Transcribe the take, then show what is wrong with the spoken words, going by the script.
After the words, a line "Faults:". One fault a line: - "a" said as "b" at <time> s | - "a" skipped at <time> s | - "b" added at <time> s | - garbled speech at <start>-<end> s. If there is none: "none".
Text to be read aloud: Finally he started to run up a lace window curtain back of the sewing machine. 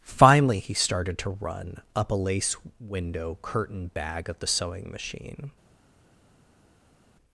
Finally he started to run up a lace window curtain bag of the sewing machine.
Faults:
- "back" said as "bag" at 3.9 s